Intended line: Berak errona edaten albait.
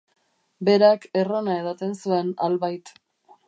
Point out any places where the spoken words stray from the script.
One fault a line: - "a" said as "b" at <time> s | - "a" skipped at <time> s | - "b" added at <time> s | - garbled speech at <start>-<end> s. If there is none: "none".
- "zuen" added at 2.0 s